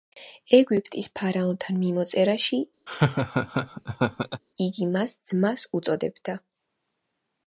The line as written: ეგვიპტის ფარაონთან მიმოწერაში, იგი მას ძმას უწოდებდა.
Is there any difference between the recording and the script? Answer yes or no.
no